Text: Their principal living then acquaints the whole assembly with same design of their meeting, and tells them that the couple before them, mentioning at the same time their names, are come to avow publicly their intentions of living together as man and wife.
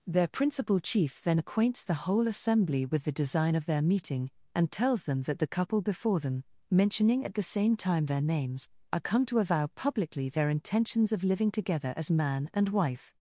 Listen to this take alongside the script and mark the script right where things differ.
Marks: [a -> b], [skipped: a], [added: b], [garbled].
Their principal [living -> chief] then acquaints the whole assembly with [same -> the] design of their meeting, and tells them that the couple before them, mentioning at the same time their names, are come to avow publicly their intentions of living together as man and wife.